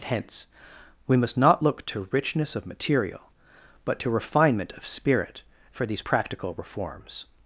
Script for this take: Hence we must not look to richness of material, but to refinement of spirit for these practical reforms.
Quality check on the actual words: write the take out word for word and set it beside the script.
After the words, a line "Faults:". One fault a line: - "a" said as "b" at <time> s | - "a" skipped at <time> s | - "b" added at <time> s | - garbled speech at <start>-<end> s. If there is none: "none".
Hence we must not look to richness of material, but to refinement of spirit for these practical reforms.
Faults:
none